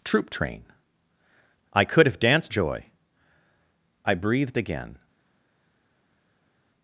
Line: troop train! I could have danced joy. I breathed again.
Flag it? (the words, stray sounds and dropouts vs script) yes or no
no